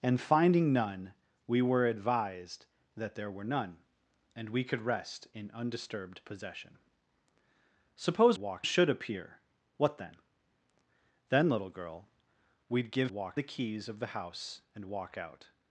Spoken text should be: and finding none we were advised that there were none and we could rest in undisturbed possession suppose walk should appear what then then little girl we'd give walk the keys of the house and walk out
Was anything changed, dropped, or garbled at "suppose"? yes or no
no